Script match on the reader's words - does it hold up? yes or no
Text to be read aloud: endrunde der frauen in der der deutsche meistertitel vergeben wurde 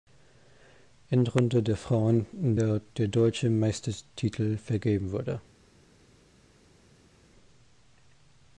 yes